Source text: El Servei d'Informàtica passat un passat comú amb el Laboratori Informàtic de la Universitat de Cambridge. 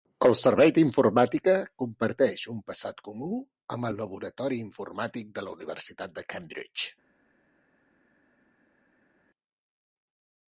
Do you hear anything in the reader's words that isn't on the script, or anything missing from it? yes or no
yes